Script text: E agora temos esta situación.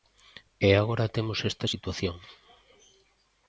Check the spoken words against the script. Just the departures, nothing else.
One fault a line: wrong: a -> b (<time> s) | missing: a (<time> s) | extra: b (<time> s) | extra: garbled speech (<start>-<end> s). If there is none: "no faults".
no faults